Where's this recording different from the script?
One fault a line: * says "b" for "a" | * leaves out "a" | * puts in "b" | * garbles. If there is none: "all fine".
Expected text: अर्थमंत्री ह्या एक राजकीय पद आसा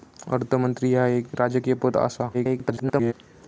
* garbles